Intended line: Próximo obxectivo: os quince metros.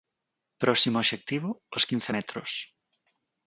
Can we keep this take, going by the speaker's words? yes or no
yes